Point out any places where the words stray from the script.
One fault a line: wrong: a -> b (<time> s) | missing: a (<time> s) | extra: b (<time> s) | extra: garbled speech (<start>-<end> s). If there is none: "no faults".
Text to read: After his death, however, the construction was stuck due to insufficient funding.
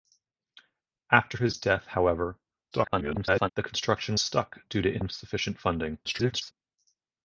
extra: garbled speech (2.7-3.5 s)
missing: was (4.2 s)
extra: garbled speech (6.0-6.5 s)